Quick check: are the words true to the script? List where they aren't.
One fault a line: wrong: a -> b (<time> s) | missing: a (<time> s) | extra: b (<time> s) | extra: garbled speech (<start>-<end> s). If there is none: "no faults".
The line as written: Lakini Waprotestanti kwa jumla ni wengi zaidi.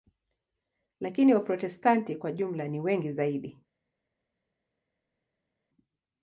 no faults